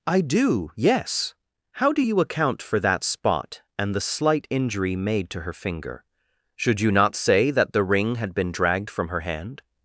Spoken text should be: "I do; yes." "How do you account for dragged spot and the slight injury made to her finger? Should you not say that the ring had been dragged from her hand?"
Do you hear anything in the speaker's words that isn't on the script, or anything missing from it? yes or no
yes